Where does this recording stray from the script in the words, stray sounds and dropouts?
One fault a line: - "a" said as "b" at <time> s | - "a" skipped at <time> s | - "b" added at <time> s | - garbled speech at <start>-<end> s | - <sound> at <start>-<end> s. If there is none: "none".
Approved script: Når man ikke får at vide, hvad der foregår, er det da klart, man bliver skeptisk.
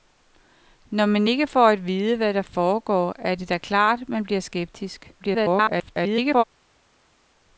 - garbled speech at 5.2-6.4 s